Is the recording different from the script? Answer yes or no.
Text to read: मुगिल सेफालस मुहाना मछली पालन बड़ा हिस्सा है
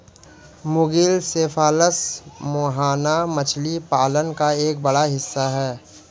yes